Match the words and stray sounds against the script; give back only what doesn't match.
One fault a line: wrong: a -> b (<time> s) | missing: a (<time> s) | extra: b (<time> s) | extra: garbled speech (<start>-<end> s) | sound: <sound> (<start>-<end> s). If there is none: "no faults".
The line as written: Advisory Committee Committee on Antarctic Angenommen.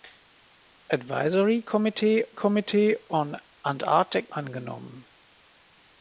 no faults